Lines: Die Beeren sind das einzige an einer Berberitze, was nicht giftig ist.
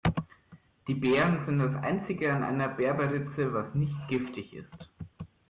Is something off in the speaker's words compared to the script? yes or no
no